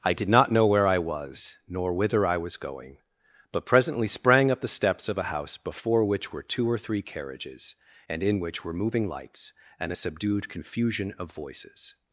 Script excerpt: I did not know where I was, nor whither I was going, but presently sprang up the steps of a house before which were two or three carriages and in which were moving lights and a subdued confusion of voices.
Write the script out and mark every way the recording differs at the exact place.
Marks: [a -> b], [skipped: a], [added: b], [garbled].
I did not know where I was, nor whither I was going, but presently sprang up the steps of a house before which were two or three carriages and in which were moving lights and a subdued confusion of voices.